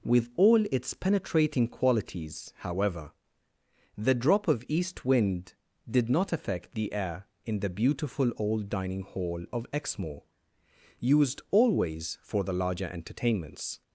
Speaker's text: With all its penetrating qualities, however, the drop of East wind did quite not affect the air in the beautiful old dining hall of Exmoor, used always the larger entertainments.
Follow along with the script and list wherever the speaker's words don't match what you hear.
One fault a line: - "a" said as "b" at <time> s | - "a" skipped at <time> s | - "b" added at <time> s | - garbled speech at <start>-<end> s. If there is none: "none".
- "quite" skipped at 6.1 s
- "for" added at 12.2 s